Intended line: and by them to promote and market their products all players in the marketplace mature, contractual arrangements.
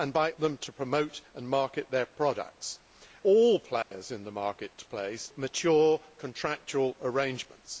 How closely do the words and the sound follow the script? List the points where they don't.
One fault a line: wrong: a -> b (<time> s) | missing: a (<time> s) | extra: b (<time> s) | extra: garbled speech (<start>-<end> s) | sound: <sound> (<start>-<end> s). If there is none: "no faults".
sound: dropout (3.8-3.9 s)